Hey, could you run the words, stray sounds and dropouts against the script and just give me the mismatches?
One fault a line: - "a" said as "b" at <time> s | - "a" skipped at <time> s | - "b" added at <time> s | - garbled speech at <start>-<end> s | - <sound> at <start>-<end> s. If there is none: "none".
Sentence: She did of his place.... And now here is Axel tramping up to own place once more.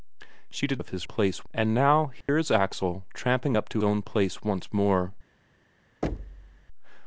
- dropout at 2.2-2.3 s
- thud at 6.0-6.7 s